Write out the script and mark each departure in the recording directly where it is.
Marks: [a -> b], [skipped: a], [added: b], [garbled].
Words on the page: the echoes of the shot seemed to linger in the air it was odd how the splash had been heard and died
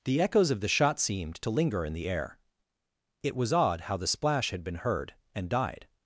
the echoes of the shot seemed to linger in the air it was odd how the splash had been heard and died